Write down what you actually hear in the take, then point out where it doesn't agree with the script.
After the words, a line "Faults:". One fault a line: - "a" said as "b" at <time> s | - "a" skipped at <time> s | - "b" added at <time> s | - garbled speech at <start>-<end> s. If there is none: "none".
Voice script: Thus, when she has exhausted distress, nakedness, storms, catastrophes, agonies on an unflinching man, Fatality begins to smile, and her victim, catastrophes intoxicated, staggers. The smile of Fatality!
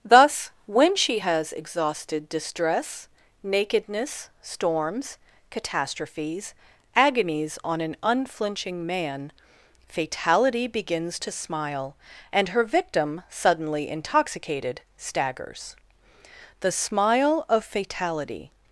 Thus, when she has exhausted distress, nakedness, storms, catastrophes, agonies on an unflinching man, Fatality begins to smile, and her victim, suddenly intoxicated, staggers. The smile of Fatality!
Faults:
- "catastrophes" said as "suddenly" at 13.3 s